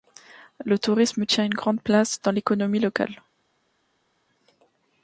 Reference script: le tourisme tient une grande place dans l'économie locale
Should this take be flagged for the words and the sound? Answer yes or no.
no